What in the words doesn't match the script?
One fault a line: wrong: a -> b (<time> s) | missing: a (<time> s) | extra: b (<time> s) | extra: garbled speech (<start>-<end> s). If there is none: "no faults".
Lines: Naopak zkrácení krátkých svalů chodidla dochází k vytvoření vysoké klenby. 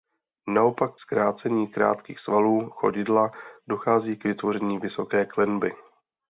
no faults